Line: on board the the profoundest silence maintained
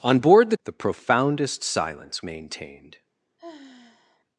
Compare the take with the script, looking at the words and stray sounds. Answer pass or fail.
fail